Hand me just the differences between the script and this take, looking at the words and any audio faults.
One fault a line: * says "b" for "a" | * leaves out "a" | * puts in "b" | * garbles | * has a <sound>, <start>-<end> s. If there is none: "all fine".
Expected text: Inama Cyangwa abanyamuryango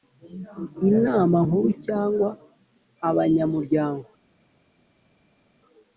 * puts in "Nkuru"